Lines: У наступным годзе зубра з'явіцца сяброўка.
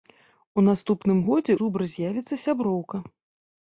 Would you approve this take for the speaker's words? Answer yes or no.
yes